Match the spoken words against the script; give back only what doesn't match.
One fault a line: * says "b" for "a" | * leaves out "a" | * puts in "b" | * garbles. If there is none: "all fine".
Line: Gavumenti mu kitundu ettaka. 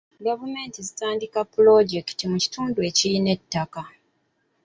* puts in "zitandika pulojekiti"
* puts in "ekirina"